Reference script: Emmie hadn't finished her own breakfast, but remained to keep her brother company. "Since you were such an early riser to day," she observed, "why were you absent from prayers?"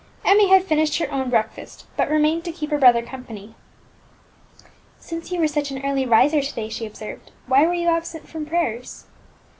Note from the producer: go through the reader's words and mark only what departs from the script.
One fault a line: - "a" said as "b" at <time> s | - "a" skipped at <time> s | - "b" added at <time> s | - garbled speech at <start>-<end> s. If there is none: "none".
- "hadn't" said as "had" at 0.5 s